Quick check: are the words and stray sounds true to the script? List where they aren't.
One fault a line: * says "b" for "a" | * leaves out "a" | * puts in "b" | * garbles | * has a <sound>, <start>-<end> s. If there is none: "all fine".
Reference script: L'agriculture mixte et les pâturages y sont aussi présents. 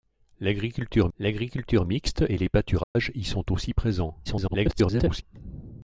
* puts in "l'agriculture"
* has a dropout, 2.8-3.0 s
* garbles